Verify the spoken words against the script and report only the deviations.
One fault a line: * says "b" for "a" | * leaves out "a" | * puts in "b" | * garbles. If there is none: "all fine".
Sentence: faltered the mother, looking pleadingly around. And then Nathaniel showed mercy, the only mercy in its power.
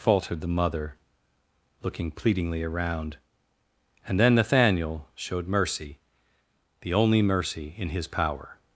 * says "his" for "its"